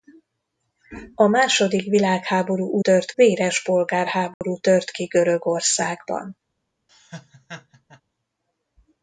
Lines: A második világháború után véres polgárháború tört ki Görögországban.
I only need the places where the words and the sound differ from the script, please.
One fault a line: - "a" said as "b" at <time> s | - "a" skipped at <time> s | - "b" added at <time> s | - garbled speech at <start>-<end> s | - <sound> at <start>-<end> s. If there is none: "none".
- "után" said as "tört" at 2.8 s
- dropout at 4.3-4.4 s
- laugh at 6.9-8.0 s